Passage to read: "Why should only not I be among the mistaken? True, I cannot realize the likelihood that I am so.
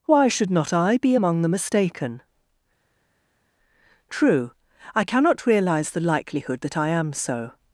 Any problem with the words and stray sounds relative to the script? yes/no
yes